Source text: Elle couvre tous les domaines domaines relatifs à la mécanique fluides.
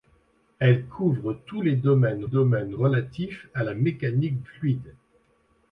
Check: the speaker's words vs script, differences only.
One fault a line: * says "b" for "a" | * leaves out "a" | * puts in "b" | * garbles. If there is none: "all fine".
all fine